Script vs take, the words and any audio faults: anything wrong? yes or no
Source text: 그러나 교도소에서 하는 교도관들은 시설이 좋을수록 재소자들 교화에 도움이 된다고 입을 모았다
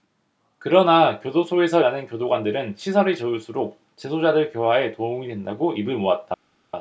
no